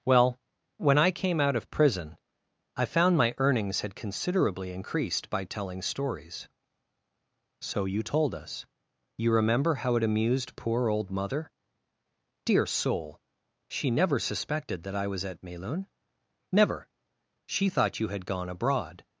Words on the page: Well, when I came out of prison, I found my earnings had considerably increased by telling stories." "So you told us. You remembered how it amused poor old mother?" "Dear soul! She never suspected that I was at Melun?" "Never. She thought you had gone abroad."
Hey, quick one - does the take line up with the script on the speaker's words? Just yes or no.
no